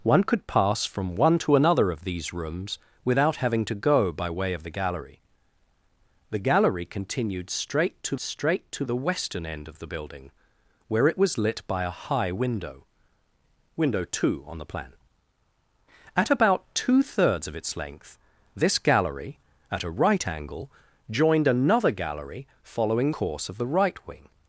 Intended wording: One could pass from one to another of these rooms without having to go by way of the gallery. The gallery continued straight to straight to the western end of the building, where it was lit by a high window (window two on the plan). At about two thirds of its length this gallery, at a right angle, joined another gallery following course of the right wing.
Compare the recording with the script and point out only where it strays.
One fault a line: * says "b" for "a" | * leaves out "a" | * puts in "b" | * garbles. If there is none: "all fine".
all fine